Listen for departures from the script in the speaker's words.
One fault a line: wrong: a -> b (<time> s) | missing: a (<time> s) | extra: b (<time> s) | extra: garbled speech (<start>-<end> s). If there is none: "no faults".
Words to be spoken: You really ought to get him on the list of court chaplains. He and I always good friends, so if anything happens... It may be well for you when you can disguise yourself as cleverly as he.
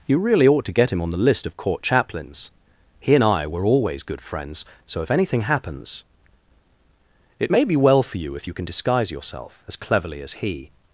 extra: were (3.5 s)
wrong: when -> if (8.3 s)